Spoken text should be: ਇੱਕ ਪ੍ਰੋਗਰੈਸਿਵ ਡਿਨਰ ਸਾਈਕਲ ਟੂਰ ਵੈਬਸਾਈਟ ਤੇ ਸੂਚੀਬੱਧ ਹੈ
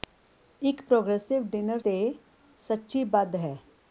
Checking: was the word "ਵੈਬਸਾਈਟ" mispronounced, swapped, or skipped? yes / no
yes